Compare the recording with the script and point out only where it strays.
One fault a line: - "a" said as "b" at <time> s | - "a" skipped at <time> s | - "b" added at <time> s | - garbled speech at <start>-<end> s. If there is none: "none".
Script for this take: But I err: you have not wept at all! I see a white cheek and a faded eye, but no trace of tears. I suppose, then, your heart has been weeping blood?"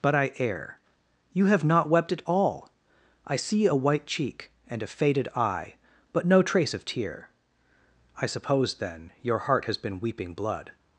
- "tears" said as "tear" at 6.8 s